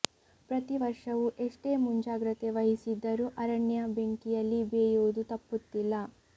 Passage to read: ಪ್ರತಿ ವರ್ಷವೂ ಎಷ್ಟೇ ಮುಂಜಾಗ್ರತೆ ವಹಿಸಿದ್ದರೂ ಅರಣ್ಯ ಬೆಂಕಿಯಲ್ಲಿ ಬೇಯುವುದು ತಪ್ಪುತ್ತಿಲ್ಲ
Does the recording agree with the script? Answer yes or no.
yes